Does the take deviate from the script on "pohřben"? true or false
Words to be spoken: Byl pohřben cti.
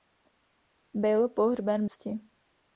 false